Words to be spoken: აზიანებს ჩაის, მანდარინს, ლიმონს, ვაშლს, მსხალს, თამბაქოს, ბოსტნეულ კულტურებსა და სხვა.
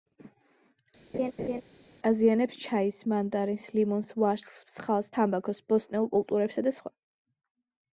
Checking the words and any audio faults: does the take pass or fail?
fail